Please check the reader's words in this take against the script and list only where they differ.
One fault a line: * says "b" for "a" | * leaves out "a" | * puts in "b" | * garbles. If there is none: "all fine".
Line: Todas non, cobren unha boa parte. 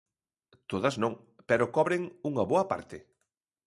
* puts in "pero"